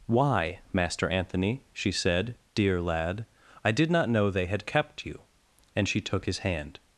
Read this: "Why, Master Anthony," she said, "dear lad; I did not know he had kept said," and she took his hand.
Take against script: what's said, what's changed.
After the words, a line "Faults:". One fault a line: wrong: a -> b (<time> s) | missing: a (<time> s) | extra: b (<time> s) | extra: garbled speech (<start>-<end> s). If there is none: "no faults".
"Why, Master Anthony," she said, "dear lad; I did not know they had kept you," and she took his hand.
Faults:
wrong: he -> they (4.3 s)
wrong: said -> you (5.0 s)